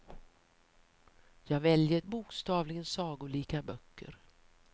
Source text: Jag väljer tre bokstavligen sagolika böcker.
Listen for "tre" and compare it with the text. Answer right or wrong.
wrong